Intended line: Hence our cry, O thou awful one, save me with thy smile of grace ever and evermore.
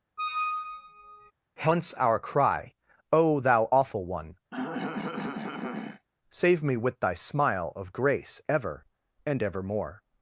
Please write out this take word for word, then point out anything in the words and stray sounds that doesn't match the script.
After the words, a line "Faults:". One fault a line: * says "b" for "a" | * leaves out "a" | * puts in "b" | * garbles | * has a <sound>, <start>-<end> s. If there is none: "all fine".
Hence our cry, O thou awful one, save me with thy smile of grace ever and evermore.
Faults:
* has a squeak, 0.2-1.3 s
* has a throat clearing, 4.5-6.1 s